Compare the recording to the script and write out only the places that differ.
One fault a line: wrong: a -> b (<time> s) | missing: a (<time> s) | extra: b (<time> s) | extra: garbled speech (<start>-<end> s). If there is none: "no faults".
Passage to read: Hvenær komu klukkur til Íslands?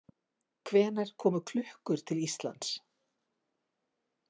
no faults